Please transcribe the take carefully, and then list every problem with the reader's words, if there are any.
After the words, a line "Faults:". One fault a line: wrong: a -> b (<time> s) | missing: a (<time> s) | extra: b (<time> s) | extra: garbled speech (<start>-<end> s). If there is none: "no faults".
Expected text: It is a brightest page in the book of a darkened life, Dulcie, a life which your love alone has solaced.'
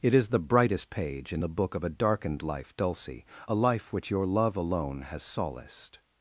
It is the brightest page in the book of a darkened life, Dulcie, a life which your love alone has solaced.'
Faults:
wrong: a -> the (0.3 s)